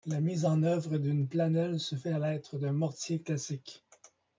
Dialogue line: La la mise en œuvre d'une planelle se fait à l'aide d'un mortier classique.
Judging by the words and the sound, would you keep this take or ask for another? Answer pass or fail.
fail